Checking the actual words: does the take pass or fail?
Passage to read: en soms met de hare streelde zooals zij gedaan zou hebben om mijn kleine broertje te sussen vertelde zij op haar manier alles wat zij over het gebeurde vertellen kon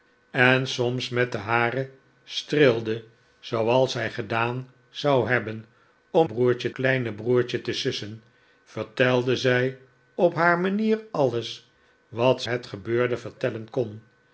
fail